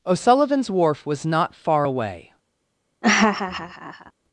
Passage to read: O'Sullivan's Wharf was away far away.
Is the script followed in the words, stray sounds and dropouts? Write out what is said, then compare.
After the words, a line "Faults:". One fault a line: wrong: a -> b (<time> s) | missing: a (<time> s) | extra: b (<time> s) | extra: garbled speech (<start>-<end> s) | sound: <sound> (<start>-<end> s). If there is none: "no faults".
O'Sullivan's Wharf was not far away.
Faults:
wrong: away -> not (1.3 s)
sound: laugh (3.0-4.1 s)